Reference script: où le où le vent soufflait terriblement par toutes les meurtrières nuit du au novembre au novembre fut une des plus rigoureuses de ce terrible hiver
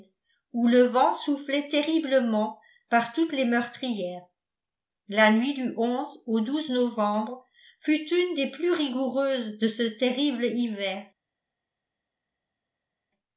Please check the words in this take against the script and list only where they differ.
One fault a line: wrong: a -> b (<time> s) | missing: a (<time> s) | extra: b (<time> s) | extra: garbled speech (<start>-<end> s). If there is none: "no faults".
missing: où le (0.9 s)
extra: la (5.1 s)
missing: au novembre (7.5 s)